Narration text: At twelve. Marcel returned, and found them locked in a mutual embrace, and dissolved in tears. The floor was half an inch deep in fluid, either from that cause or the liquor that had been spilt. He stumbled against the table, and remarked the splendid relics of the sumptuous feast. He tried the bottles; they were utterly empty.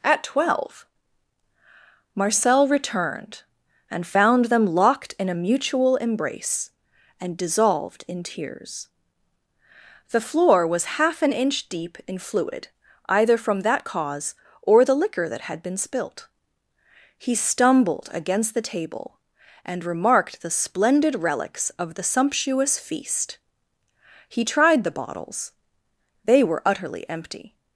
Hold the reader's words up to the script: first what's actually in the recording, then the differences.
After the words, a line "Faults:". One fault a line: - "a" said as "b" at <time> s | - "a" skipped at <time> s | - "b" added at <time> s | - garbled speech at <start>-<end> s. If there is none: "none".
At twelve. Marcel returned, and found them locked in a mutual embrace, and dissolved in tears. The floor was half an inch deep in fluid, either from that cause or the liquor that had been spilt. He stumbled against the table, and remarked the splendid relics of the sumptuous feast. He tried the bottles; they were utterly empty.
Faults:
none